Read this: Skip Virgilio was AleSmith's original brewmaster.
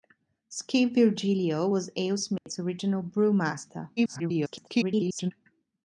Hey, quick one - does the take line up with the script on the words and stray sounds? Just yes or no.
no